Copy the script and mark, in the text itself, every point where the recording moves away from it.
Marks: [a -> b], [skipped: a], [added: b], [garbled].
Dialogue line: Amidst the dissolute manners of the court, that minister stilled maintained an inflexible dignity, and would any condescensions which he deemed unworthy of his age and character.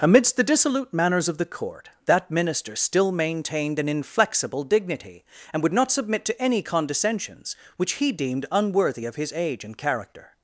Amidst the dissolute manners of the court, that minister [stilled -> still] maintained an inflexible dignity, and would [added: not submit to] any condescensions which he deemed unworthy of his age and character.